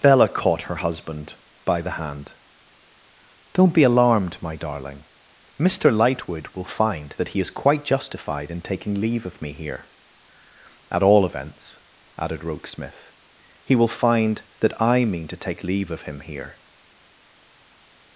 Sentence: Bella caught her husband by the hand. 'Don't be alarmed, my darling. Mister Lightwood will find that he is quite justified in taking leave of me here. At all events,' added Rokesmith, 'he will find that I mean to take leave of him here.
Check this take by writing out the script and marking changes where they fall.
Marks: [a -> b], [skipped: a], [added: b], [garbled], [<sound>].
Bella caught her husband by the hand. 'Don't be alarmed, my darling. Mister Lightwood will find that he is quite justified in taking leave of me here. At all events,' added Rokesmith, 'he will find that I mean to take leave of him here.